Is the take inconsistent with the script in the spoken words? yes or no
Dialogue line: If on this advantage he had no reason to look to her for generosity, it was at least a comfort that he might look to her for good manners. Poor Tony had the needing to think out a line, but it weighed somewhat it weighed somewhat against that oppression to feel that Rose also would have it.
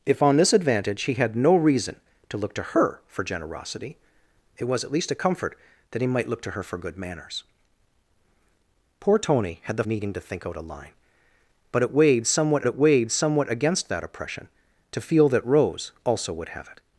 no